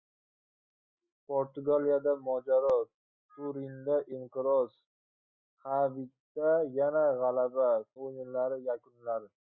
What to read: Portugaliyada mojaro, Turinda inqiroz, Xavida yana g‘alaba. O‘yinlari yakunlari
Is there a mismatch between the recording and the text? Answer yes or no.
no